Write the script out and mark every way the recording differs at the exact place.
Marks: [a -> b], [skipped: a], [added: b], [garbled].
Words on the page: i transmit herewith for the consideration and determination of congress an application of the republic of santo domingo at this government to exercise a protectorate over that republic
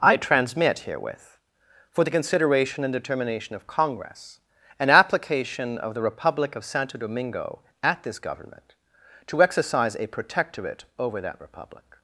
i transmit herewith for the consideration and determination of congress an application of the republic of santo domingo at this government to exercise a protectorate over that republic